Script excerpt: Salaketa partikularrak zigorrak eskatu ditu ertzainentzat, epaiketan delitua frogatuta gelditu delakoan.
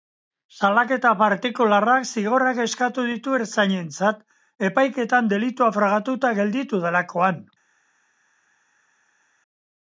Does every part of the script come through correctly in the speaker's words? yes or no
yes